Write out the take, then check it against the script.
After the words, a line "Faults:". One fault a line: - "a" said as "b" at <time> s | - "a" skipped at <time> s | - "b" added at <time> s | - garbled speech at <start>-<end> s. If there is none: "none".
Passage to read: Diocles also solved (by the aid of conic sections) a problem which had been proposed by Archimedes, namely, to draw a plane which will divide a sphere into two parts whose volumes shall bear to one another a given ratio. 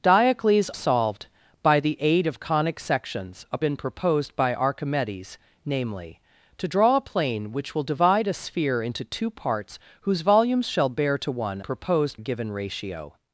Diocles solved (by the aid of conic sections) a been proposed by Archimedes, namely, to draw a plane which will divide a sphere into two parts whose volumes shall bear to one proposed a given ratio.
Faults:
- "also" skipped at 0.7 s
- "problem which had" skipped at 3.6 s
- "another" said as "proposed" at 11.6 s